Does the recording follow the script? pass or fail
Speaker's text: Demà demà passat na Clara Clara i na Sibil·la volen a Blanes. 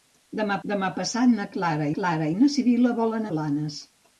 pass